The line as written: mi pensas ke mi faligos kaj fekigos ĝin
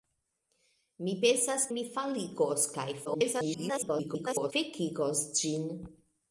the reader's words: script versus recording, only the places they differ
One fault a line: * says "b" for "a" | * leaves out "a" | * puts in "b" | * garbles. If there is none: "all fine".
* leaves out "ke"
* garbles